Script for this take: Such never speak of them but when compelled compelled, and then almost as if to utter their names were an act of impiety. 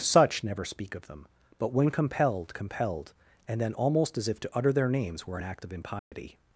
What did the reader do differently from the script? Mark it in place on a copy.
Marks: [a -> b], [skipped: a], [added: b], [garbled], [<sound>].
Such never speak of them but when compelled compelled, and then almost as if to utter their names were an act of impiety. [dropout]